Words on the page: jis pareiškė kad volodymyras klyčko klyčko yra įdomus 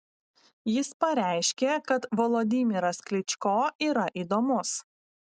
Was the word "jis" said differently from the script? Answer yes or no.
no